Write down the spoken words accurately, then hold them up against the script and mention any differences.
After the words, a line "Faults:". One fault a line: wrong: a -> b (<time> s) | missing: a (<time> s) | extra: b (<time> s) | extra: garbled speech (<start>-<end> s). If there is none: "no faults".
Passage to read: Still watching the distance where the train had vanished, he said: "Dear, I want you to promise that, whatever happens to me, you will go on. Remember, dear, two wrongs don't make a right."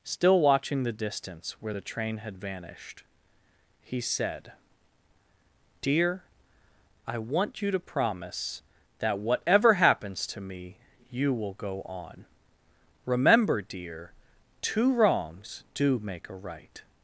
Still watching the distance where the train had vanished, he said: "Dear, I want you to promise that, whatever happens to me, you will go on. Remember, dear, two wrongs do make a right."
Faults:
wrong: don't -> do (15.7 s)